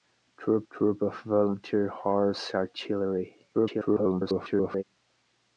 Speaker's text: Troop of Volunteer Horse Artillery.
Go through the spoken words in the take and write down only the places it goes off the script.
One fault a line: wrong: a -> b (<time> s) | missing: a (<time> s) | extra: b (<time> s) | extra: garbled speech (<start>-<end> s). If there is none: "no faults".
extra: troop (0.7 s)
extra: garbled speech (3.5-4.8 s)